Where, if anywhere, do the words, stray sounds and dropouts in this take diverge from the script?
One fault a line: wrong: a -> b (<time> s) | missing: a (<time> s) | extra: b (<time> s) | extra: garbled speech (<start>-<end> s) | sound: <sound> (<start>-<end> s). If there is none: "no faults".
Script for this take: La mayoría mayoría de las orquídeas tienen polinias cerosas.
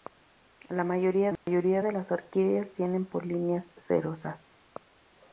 sound: dropout (1.4-1.5 s)